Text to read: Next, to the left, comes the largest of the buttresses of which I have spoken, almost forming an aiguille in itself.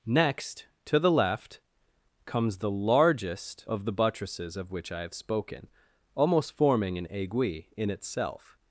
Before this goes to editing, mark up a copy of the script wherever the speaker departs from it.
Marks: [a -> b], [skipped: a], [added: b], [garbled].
Next, to the left, comes the largest of the buttresses of which I have spoken, almost forming an aiguille in itself.